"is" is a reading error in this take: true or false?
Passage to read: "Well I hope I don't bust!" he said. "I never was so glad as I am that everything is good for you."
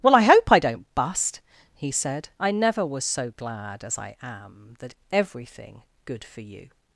true